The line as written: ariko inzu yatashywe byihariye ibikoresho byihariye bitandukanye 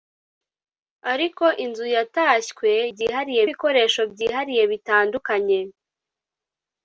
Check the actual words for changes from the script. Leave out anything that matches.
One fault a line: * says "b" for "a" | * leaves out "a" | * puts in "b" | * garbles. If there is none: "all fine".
all fine